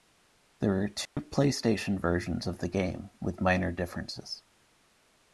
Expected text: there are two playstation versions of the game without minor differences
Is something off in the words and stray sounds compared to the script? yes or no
yes